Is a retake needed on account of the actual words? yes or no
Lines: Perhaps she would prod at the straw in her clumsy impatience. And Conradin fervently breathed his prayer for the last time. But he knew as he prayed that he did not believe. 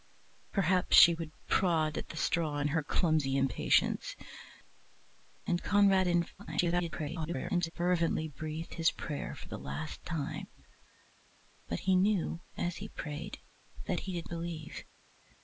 yes